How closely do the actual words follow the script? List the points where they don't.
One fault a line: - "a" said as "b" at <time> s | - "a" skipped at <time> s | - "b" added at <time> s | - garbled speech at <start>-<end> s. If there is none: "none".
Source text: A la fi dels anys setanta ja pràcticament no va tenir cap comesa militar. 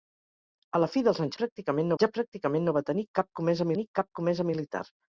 - "setanta" said as "pràcticament" at 1.4 s
- "tenir cap comesa" added at 3.8 s